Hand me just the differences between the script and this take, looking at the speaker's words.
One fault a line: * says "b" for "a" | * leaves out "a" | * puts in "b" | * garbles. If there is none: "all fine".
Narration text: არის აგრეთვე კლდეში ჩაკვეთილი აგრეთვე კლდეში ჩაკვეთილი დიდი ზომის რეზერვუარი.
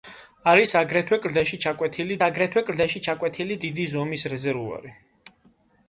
all fine